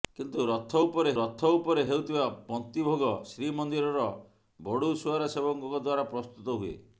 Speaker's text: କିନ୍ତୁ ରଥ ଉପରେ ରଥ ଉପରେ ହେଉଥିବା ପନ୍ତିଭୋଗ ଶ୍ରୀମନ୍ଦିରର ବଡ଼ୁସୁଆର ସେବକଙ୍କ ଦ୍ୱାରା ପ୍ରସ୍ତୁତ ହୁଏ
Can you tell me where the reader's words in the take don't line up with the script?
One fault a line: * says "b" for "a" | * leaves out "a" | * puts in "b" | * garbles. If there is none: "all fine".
all fine